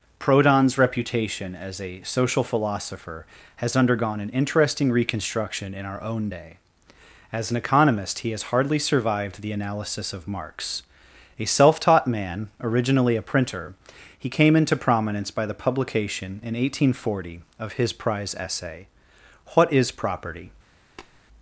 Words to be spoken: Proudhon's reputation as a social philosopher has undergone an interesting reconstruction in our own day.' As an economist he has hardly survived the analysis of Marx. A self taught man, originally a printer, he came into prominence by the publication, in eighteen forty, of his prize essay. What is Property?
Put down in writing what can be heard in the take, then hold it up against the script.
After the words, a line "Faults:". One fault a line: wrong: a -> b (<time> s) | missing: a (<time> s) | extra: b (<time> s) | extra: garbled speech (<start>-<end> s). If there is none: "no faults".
Proudhon's reputation as a social philosopher has undergone an interesting reconstruction in our own day.' As an economist he has hardly survived the analysis of Marx. A self taught man, originally a printer, he came into prominence by the publication, in eighteen forty, of his prize essay. What is Property?
Faults:
no faults